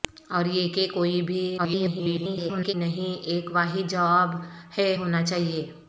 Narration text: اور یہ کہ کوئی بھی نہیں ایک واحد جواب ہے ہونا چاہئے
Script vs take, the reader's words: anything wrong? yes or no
yes